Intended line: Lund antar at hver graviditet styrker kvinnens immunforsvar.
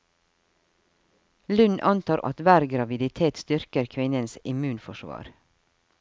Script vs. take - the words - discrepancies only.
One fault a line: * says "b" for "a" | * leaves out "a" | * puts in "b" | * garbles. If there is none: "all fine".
all fine